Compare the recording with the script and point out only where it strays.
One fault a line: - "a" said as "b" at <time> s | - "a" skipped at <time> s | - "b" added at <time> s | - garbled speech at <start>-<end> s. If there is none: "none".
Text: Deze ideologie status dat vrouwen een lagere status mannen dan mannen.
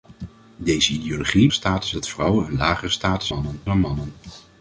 none